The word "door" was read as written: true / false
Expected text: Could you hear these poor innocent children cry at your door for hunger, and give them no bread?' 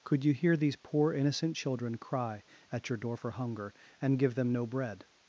true